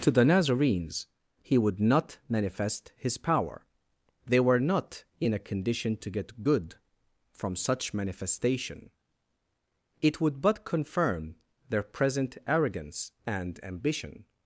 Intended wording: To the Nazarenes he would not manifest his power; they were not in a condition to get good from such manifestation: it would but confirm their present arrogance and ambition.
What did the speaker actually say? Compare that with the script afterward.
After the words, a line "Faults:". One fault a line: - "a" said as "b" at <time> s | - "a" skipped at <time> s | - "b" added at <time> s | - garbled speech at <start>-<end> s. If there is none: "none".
To the Nazarenes he would not manifest his power; they were not in a condition to get good from such manifestation: it would but confirm their present arrogance and ambition.
Faults:
none